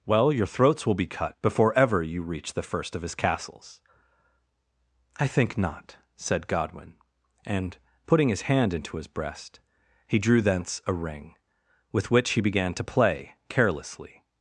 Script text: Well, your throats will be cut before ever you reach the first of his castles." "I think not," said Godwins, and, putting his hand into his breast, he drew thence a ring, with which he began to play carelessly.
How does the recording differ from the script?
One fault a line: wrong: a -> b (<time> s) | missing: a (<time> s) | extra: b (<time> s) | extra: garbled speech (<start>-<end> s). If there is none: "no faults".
wrong: Godwins -> Godwin (6.5 s)